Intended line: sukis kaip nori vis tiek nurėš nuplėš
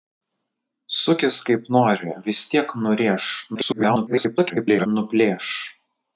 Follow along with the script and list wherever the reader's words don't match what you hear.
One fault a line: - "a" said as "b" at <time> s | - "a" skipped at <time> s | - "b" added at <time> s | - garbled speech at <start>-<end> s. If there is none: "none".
- garbled speech at 3.5-4.9 s